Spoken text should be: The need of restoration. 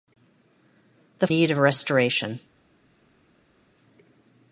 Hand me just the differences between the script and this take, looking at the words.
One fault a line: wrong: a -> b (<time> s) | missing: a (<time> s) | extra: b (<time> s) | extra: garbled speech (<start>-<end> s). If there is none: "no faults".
no faults